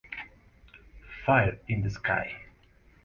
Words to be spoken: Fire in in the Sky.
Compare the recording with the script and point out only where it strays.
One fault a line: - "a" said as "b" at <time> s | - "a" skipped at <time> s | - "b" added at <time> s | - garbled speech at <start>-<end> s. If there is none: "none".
- "in" skipped at 1.8 s